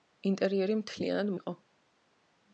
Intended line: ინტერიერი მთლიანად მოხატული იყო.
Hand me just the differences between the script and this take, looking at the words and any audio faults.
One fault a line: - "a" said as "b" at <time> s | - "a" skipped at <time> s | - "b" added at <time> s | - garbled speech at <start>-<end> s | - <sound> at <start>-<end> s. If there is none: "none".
- "მოხატული" skipped at 1.3 s